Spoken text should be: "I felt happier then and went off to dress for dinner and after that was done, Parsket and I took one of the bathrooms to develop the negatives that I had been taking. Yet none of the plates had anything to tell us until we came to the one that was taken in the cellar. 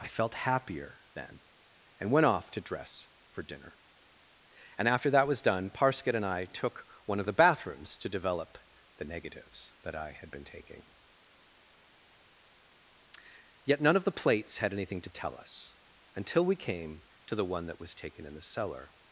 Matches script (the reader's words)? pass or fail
pass